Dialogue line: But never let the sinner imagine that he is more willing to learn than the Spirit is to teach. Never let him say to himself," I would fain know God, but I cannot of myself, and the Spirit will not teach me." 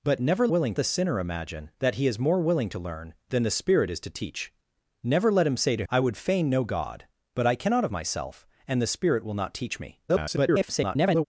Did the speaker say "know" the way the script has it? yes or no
yes